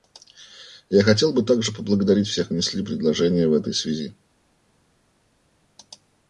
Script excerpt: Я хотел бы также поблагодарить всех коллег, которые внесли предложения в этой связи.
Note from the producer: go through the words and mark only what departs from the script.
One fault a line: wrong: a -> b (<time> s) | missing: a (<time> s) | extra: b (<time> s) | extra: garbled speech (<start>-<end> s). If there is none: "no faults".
missing: коллег которые (2.5 s)